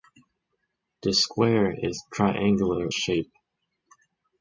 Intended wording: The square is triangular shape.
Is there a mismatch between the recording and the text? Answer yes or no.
no